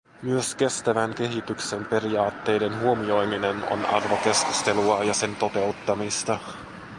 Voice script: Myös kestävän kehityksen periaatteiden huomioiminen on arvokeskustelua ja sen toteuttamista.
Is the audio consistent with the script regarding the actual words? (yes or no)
yes